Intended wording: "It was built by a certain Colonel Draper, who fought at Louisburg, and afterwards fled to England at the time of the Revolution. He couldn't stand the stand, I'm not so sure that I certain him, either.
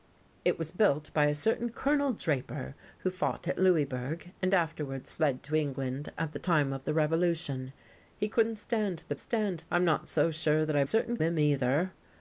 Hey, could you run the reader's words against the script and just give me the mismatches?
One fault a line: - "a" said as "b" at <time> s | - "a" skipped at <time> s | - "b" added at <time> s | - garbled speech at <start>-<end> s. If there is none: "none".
none